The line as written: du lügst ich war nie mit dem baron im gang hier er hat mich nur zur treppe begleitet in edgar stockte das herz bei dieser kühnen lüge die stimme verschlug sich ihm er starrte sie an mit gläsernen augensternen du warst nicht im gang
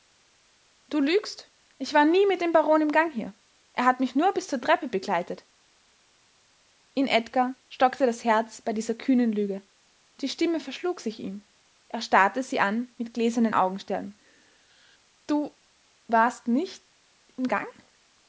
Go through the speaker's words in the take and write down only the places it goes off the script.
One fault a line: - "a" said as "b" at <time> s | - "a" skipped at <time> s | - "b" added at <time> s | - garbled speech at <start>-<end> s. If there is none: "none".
- "bis" added at 4.3 s